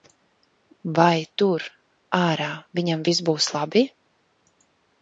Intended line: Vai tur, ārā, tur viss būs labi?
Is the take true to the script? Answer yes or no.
no